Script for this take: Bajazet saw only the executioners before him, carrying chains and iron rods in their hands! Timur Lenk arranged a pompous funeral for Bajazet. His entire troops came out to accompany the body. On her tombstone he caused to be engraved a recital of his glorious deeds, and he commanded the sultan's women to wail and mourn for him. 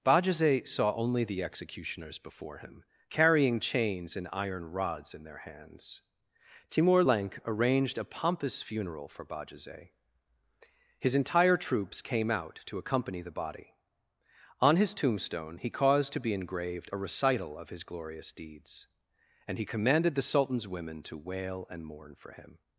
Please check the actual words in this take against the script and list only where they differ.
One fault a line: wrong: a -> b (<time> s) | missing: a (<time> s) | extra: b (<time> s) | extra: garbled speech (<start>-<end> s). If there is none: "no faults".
wrong: her -> his (14.8 s)